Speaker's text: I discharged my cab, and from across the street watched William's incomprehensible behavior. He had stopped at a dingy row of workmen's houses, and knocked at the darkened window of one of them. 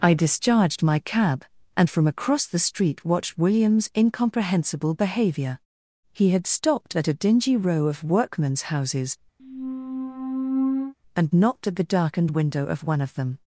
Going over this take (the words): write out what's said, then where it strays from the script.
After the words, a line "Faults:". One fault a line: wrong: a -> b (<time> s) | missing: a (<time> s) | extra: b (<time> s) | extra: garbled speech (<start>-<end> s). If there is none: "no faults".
I discharged my cab, and from across the street watched William's incomprehensible behavior. He had stopped at a dingy row of workmen's houses, and knocked at the darkened window of one of them.
Faults:
no faults